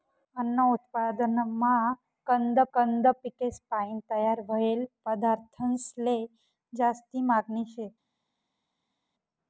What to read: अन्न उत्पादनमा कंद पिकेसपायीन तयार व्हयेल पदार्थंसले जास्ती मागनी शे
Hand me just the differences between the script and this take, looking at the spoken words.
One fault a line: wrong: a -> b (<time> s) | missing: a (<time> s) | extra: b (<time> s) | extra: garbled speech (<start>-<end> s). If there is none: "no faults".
extra: कंद (2.7 s)